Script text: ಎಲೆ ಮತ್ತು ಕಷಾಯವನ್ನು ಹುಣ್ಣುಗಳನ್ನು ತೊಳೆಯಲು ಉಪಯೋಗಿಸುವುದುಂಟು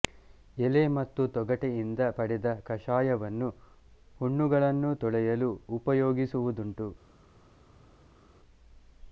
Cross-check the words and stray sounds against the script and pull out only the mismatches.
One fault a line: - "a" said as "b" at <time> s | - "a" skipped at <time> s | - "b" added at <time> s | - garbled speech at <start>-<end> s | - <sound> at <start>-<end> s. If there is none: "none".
- "ತೊಗಟೆಯಿಂದ ಪಡೆದ" added at 1.3 s